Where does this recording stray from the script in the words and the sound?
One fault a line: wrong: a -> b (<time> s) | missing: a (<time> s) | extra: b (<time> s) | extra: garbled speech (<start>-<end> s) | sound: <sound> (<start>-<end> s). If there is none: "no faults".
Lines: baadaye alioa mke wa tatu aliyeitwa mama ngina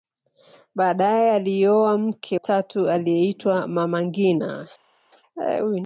missing: wa (2.4 s)